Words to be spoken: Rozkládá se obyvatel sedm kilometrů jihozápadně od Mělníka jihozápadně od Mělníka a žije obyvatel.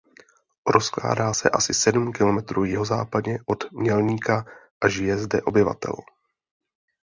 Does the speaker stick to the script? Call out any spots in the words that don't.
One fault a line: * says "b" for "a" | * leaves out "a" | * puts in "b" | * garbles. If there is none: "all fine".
* says "asi" for "obyvatel"
* leaves out "jihozápadně od Mělníka"
* puts in "zde"